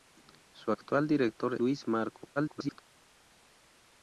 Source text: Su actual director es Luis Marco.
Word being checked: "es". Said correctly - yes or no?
no